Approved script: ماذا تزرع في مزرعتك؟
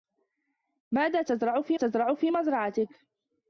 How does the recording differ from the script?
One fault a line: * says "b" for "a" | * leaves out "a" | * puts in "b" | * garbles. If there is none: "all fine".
* puts in "تزرع في"